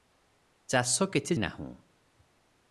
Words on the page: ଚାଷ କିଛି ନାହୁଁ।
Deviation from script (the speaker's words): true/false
false